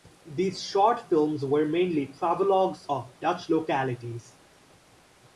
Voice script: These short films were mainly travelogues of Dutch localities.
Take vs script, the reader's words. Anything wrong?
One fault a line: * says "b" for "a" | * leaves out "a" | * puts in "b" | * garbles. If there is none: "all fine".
all fine